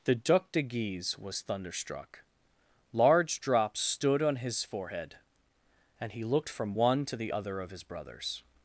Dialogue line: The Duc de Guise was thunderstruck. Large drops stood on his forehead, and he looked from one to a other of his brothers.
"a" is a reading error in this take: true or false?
true